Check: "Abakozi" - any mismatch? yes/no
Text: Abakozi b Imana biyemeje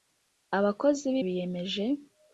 no